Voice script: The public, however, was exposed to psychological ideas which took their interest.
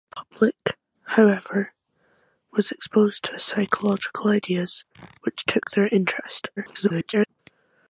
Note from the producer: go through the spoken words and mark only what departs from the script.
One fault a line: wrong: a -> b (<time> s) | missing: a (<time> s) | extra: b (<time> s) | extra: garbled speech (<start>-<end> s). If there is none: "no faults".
extra: garbled speech (6.6-7.3 s)